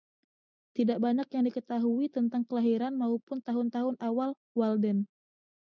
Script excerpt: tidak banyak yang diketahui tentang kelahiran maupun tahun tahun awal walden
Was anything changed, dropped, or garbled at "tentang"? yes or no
no